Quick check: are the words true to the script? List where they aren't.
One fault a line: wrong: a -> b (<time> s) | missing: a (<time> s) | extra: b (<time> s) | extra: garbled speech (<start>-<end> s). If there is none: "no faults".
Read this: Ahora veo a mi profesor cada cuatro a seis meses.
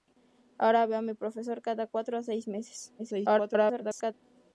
extra: garbled speech (3.0-4.1 s)